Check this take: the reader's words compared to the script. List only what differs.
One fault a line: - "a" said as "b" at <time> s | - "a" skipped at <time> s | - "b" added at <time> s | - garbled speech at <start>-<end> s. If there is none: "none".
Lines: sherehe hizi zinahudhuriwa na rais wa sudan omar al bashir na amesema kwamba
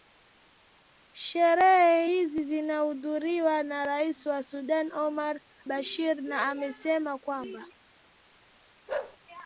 - "al" skipped at 5.4 s